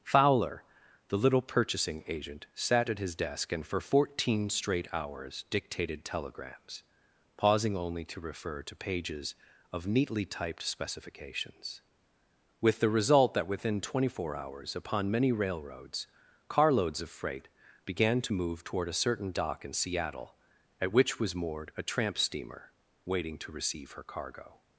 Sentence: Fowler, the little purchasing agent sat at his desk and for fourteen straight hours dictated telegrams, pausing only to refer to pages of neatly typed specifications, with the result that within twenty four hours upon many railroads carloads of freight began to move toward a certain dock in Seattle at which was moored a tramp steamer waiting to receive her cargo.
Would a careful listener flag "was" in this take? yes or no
no